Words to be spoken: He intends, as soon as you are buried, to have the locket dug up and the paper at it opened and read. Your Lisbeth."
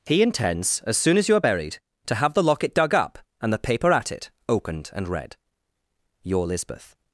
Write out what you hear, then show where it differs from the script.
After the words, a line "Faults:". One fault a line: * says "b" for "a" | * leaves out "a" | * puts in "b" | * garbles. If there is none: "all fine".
He intends, as soon as you are buried, to have the locket dug up and the paper at it opened and read. Your Lisbeth."
Faults:
all fine